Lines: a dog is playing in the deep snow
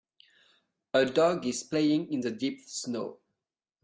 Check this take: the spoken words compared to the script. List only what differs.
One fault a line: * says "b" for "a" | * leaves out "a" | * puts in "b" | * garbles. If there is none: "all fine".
all fine